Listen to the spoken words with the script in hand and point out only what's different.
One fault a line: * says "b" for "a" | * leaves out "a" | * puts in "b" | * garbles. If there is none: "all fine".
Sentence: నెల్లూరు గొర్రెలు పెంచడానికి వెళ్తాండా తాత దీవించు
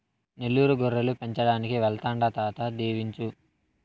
all fine